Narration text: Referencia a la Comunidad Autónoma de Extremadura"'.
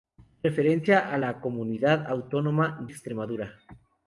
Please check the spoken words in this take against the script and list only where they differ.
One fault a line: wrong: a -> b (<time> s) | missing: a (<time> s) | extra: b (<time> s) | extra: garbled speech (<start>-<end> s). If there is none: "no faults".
missing: de (2.9 s)